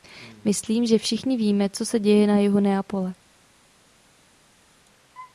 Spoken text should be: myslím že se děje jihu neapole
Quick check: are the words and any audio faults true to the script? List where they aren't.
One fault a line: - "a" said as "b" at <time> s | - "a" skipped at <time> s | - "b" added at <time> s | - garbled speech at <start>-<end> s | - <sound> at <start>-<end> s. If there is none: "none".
- "všichni víme co" added at 1.0 s
- "na" added at 2.3 s